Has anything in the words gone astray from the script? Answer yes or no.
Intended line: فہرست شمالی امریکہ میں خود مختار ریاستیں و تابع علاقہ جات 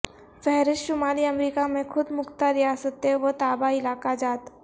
no